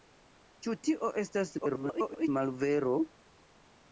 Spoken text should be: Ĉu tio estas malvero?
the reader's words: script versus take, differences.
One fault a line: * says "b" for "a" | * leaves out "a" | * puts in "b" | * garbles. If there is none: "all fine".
* garbles